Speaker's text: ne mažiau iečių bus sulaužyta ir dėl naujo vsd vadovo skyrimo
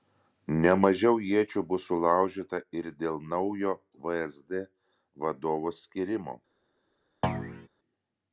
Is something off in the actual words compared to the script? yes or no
no